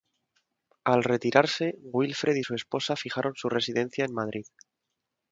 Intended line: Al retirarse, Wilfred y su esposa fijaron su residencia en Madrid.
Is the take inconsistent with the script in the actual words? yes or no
no